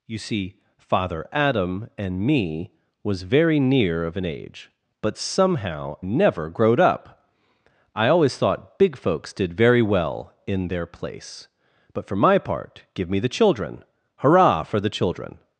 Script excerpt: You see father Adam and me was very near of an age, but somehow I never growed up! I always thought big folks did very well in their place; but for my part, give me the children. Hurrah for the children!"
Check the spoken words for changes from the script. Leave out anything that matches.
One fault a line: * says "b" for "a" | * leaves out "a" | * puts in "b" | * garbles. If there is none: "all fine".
* leaves out "I"